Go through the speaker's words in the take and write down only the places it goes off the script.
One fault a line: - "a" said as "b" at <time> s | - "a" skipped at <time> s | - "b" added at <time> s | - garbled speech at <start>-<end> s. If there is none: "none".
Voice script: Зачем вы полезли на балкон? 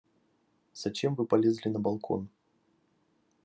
none